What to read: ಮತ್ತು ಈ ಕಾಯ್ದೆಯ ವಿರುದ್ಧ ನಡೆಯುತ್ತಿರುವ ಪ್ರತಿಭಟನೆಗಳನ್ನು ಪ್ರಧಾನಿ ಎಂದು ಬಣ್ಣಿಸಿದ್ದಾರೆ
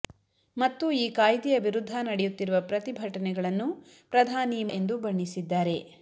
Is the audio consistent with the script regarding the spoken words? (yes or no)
yes